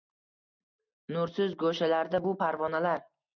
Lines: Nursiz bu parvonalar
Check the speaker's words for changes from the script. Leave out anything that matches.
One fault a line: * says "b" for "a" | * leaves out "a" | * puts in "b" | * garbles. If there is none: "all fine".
* puts in "go‘shalarda"